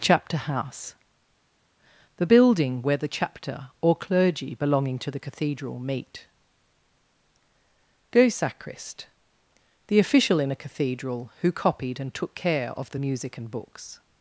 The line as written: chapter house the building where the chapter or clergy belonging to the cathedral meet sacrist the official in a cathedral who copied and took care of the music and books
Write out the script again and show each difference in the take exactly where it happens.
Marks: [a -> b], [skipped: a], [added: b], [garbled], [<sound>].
chapter house the building where the chapter or clergy belonging to the cathedral meet [added: go] sacrist the official in a cathedral who copied and took care of the music and books